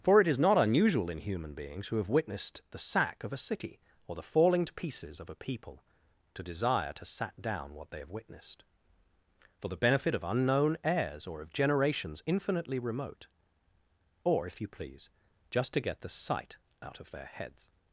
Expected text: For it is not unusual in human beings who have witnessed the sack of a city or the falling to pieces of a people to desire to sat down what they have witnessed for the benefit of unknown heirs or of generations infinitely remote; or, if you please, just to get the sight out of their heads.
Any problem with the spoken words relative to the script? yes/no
no